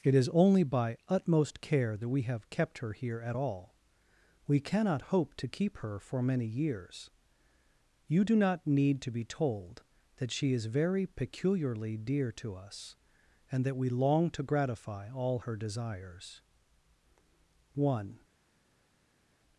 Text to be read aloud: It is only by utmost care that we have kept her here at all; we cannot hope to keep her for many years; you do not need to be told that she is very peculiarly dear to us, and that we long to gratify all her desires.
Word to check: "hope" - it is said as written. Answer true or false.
true